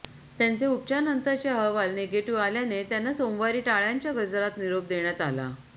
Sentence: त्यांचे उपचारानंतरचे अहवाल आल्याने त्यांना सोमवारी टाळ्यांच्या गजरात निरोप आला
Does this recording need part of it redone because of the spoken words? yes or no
yes